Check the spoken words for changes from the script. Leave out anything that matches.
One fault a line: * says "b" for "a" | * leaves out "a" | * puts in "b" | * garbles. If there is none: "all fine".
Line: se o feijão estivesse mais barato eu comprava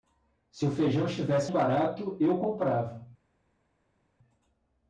* leaves out "mais"